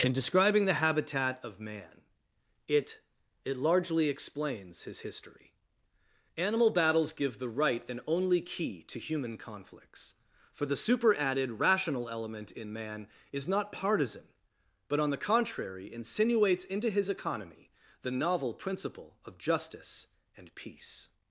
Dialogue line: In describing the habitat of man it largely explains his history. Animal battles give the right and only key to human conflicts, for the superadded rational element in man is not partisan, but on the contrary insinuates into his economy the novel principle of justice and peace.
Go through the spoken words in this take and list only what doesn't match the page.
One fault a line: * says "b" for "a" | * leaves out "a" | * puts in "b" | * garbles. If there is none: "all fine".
* puts in "it"